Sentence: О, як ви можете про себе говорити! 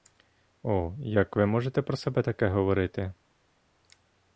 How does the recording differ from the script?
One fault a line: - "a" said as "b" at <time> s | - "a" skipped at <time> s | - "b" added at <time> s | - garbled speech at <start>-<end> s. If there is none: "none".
- "таке" added at 2.2 s